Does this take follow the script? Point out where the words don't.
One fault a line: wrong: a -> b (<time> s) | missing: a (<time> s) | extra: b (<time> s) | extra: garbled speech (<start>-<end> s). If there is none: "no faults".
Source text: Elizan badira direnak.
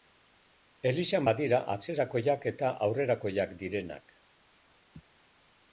extra: atzerakoiak eta aurrerakoiak (1.8 s)